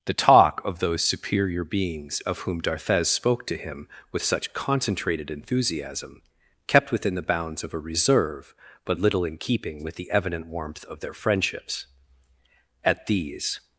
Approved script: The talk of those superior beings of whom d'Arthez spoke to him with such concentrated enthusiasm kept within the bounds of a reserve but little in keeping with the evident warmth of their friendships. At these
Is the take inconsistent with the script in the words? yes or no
no